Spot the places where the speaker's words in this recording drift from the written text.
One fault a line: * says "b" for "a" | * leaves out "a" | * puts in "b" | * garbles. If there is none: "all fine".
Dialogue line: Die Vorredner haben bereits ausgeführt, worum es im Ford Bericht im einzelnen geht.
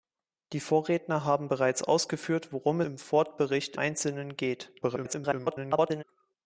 * leaves out "es"
* leaves out "im"
* garbles